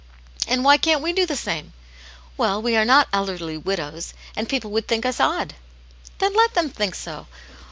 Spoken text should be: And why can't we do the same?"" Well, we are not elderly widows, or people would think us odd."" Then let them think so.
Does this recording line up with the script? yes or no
no